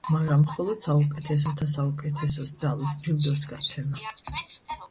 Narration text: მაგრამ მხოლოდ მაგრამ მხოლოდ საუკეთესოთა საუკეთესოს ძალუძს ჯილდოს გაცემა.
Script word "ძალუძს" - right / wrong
right